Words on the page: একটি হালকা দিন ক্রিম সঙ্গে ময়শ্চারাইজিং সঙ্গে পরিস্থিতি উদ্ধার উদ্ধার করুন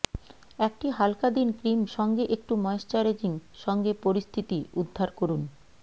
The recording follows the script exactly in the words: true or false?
false